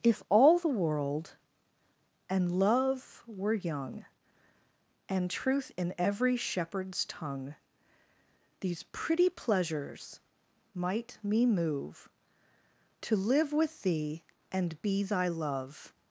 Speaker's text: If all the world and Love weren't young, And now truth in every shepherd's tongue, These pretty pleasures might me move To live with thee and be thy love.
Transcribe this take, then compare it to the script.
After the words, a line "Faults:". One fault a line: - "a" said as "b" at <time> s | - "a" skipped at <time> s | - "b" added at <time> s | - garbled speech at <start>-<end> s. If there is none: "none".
If all the world and Love were young, And truth in every shepherd's tongue, These pretty pleasures might me move To live with thee and be thy love.
Faults:
- "weren't" said as "were" at 3.3 s
- "now" skipped at 5.3 s